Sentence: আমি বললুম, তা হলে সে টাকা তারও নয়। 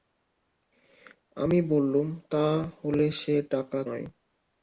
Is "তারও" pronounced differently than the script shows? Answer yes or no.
yes